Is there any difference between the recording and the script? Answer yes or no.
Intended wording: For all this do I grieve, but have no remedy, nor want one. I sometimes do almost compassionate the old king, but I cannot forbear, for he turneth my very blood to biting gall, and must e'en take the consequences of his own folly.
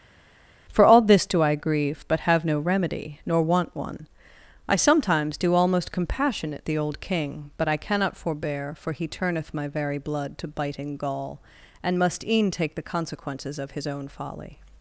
no